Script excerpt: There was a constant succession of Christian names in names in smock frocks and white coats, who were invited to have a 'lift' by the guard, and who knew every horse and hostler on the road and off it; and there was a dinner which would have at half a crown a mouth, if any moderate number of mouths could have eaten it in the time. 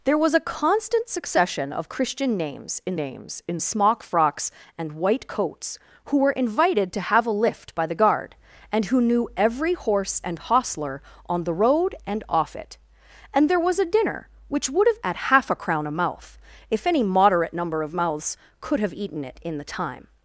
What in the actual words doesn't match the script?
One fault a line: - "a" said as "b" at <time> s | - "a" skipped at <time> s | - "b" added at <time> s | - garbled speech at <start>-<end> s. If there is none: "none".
none